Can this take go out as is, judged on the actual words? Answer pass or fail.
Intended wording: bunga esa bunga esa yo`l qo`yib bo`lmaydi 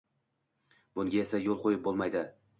fail